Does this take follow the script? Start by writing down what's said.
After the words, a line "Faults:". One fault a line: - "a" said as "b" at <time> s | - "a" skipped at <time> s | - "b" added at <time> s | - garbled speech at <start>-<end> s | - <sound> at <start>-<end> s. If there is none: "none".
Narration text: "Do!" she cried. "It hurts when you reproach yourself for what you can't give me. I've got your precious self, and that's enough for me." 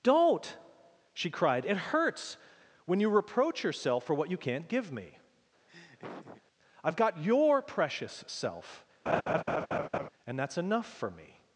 "Don't!" she cried. "It hurts when you reproach yourself for what you can't give me. I've got your precious self, and that's enough for me."
Faults:
- "Do" said as "Don't" at 0.0 s
- laugh at 5.7-6.4 s
- laugh at 9.1-10.1 s